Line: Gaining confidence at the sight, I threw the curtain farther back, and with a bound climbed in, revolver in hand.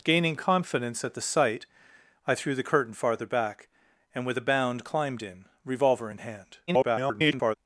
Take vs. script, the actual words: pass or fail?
fail